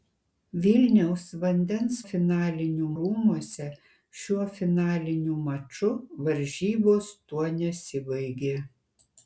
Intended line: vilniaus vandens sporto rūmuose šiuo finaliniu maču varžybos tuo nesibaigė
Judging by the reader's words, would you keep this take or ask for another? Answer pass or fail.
fail